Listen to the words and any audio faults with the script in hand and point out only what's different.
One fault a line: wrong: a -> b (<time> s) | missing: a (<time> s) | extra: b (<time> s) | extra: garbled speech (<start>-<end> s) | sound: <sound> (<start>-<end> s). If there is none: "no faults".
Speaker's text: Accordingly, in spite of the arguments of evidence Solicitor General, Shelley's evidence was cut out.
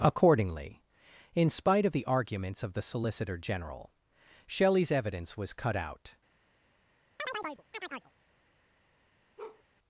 wrong: evidence -> the (2.7 s)
sound: chirp (7.2-8.1 s)
sound: bark (9.4-9.6 s)